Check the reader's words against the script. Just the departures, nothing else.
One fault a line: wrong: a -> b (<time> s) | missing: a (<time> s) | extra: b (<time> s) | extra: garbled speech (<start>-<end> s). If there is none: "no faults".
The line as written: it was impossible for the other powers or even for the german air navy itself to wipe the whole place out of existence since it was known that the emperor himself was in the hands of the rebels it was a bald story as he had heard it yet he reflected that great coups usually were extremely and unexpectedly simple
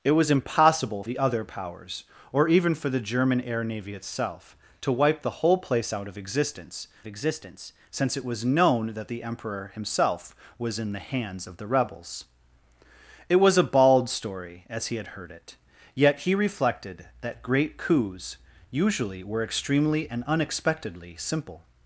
missing: for (1.0 s)
extra: existence (7.1 s)